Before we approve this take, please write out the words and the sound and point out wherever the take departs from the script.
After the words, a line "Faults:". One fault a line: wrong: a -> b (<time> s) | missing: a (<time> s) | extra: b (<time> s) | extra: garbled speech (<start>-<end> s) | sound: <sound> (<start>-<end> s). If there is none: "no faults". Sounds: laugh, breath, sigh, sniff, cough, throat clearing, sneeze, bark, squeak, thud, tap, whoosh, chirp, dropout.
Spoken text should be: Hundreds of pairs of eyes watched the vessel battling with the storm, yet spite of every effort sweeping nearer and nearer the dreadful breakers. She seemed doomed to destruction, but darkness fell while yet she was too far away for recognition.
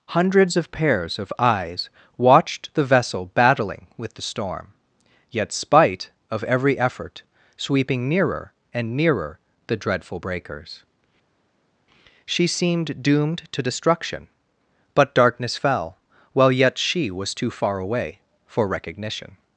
Hundreds of pairs of eyes watched the vessel battling with the storm, yet spite of every effort sweeping nearer and nearer the dreadful breakers. She seemed doomed to destruction, but darkness fell while yet she was too far away for recognition.
Faults:
no faults